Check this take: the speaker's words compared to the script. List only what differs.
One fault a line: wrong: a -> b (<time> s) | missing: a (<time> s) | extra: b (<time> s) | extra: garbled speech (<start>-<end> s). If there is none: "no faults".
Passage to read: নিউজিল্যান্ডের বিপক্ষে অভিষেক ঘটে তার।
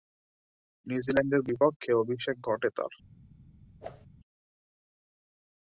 no faults